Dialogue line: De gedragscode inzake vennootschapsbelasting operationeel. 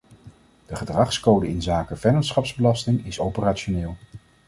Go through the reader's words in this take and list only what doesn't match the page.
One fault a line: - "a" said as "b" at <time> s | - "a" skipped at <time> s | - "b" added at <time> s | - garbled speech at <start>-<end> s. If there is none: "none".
- "is" added at 3.0 s